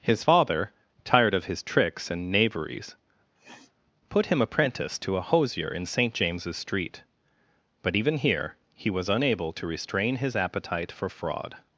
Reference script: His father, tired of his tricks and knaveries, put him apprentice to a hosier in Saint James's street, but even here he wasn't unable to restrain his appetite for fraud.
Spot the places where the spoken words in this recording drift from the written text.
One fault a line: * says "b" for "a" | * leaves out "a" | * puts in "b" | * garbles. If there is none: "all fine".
* says "was" for "wasn't"